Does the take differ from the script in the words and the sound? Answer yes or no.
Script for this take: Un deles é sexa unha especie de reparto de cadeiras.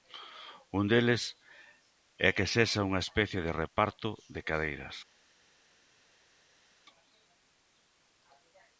yes